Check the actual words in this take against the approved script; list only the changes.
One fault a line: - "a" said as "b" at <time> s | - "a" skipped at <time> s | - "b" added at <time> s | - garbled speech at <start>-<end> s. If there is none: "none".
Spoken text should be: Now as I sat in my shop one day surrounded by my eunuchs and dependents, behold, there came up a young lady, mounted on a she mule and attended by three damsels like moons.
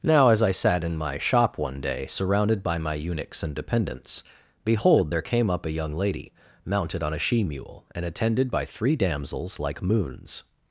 none